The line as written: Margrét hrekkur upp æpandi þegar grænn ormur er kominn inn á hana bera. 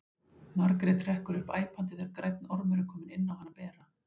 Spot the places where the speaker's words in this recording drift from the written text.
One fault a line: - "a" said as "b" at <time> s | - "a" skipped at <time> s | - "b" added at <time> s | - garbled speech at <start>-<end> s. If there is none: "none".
none